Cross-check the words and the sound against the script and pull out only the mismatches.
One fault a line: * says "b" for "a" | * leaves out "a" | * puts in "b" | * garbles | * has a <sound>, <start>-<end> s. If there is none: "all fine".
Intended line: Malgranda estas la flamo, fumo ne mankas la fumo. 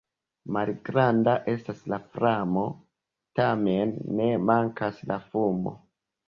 * says "tamen" for "fumo"